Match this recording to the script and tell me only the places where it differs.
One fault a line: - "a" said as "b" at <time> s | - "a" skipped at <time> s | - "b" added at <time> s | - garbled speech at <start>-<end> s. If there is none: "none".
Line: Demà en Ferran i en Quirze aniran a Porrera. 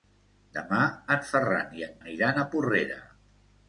- "Quirze" skipped at 1.9 s